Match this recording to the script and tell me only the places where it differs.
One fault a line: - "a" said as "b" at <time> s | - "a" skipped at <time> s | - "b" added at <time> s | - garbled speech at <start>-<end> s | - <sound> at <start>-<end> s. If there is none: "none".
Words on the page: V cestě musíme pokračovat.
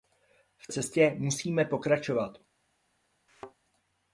- thud at 3.3-3.6 s